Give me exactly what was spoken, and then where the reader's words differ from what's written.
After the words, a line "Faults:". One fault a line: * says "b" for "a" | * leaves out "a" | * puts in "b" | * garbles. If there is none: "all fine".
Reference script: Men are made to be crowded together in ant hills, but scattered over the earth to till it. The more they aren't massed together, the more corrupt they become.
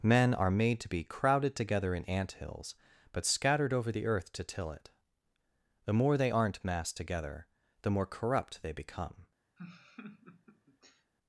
Men are made to be crowded together in ant hills, but scattered over the earth to till it. The more they aren't massed together, the more corrupt they become.
Faults:
all fine